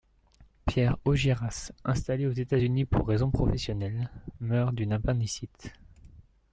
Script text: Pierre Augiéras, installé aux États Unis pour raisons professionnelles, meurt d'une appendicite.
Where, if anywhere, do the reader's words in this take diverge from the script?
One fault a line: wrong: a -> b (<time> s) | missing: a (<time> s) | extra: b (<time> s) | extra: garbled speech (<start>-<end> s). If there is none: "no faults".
no faults